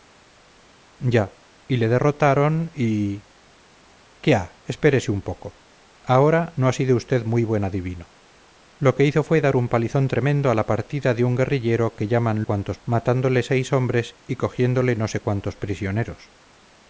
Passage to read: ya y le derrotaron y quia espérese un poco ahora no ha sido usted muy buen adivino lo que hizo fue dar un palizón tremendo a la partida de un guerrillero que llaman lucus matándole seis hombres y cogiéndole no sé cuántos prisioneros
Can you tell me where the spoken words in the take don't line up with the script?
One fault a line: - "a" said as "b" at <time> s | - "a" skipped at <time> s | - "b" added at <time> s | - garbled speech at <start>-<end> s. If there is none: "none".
- "lucus" said as "cuántos" at 12.4 s